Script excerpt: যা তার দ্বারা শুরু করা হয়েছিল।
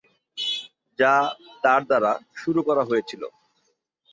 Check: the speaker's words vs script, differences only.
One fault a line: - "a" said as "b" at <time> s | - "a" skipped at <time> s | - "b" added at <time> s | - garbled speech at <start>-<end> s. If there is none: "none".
none